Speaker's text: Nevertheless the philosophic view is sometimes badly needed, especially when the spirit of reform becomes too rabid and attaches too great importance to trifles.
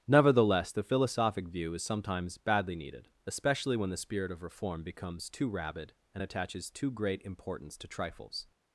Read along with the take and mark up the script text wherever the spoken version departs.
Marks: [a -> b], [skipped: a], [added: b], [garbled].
Nevertheless the philosophic view is sometimes badly needed, especially when the spirit of reform becomes too rabid and attaches too great importance to trifles.